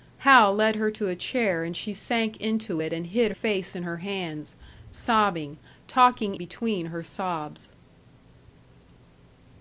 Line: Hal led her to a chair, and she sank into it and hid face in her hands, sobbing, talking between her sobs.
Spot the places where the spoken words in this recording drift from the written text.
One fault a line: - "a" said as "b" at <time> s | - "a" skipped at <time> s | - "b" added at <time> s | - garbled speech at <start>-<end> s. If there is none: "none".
none